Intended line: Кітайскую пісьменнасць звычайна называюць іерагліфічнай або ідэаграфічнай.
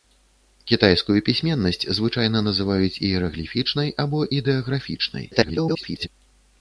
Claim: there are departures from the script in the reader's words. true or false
true